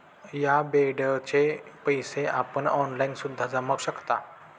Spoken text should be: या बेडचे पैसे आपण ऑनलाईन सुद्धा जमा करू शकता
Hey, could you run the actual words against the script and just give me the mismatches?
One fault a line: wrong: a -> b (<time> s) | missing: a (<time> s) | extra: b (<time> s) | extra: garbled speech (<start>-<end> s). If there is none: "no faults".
missing: करू (3.8 s)